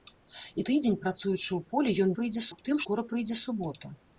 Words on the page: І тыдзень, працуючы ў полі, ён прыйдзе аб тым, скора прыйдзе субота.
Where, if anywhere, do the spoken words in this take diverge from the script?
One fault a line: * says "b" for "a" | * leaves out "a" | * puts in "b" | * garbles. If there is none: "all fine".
all fine